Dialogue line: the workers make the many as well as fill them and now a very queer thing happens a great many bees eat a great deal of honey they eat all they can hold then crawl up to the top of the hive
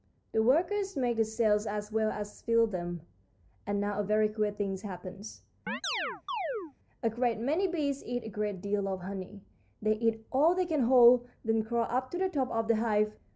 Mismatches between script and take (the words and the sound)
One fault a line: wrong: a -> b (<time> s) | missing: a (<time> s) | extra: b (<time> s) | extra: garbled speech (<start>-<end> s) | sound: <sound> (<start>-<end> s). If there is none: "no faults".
wrong: many -> cells (1.2 s)
sound: chirp (5.7-6.7 s)